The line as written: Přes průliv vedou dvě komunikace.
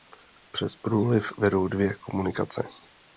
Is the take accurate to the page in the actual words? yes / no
yes